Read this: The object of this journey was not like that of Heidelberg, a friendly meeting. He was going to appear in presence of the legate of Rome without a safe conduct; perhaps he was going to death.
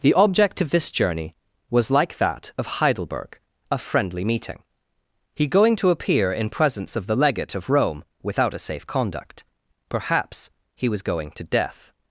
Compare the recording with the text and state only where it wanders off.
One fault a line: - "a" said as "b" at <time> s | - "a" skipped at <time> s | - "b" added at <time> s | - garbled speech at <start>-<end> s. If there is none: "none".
- "not" skipped at 1.9 s
- "was" skipped at 5.5 s